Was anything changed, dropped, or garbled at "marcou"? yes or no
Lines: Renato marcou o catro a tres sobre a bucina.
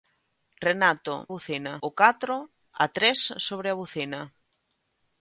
yes